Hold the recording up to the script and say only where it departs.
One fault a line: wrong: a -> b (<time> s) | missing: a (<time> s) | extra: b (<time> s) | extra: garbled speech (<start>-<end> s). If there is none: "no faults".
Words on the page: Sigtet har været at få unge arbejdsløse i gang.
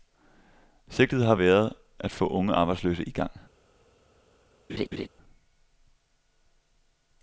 no faults